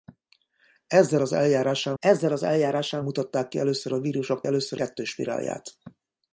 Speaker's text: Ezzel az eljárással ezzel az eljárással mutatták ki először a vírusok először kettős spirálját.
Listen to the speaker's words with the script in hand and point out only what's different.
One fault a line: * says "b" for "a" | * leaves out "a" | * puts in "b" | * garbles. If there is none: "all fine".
all fine